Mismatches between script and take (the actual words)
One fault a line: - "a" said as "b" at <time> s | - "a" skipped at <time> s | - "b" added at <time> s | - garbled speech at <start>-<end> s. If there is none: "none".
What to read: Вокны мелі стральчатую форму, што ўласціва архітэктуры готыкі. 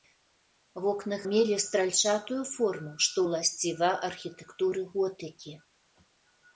none